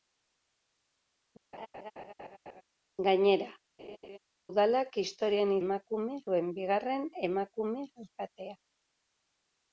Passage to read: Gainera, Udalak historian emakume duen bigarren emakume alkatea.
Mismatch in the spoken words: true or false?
false